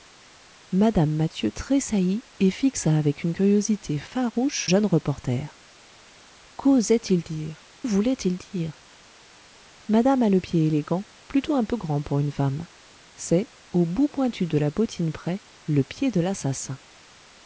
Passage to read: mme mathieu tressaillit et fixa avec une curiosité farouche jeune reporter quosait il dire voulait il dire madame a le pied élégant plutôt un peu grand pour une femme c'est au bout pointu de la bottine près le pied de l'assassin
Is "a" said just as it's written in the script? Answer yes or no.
yes